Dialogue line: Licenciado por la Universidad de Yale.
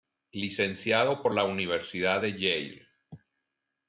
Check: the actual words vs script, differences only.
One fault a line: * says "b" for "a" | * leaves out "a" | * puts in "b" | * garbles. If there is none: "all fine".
all fine